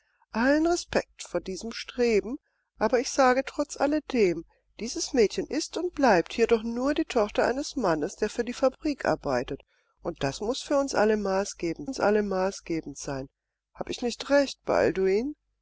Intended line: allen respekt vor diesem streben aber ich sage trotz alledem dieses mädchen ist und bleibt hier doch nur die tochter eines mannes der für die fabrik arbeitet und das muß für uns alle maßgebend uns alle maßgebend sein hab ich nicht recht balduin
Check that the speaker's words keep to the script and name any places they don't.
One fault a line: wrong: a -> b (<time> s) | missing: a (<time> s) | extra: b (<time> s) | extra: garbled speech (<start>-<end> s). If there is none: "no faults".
no faults